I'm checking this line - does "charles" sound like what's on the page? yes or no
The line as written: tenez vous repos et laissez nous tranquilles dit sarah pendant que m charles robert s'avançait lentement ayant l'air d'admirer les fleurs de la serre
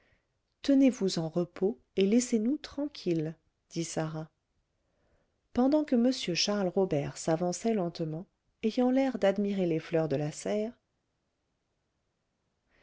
yes